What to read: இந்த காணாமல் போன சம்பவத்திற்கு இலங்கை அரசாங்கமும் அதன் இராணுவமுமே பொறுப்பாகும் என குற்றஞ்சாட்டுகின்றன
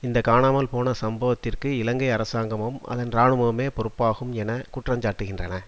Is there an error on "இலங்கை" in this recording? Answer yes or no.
no